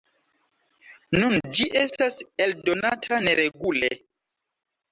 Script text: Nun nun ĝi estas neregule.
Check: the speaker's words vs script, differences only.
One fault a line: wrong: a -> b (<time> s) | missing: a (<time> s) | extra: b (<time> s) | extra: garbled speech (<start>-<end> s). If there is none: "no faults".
missing: nun (1.4 s)
extra: eldonata (2.5 s)